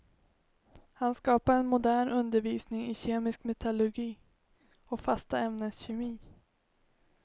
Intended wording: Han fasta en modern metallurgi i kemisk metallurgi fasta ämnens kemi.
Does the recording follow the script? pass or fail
fail